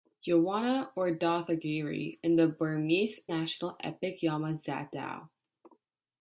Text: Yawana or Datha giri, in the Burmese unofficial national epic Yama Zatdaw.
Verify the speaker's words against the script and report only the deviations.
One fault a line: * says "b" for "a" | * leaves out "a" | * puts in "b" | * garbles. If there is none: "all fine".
* leaves out "unofficial"